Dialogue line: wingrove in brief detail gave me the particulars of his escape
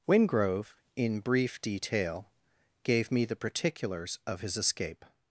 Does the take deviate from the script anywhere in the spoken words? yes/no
no